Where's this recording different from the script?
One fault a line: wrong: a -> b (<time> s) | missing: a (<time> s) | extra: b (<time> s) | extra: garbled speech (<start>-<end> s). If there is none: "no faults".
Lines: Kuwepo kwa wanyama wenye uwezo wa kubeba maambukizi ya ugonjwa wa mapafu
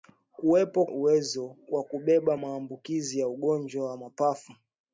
missing: kwa wanyama wenye (0.9 s)